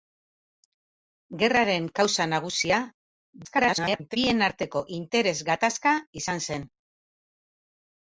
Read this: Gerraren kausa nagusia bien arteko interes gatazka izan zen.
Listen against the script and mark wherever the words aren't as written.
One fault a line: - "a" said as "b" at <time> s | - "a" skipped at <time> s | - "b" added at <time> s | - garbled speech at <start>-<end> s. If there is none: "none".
- garbled speech at 3.4-4.2 s